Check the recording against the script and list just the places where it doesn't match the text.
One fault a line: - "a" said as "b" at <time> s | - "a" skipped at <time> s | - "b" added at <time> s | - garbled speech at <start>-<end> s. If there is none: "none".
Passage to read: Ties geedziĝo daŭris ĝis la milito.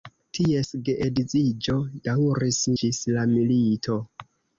none